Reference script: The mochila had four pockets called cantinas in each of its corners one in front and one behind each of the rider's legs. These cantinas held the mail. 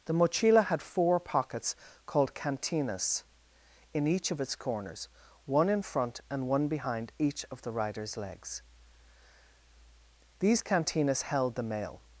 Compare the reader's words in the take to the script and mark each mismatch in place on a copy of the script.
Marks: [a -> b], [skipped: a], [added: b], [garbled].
The mochila had four pockets called cantinas in each of its corners one in front and one behind each of the rider's legs. These cantinas held the mail.